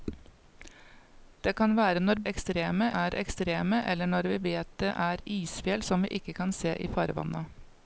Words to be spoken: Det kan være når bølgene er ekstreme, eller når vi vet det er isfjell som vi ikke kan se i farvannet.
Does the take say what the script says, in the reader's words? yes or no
no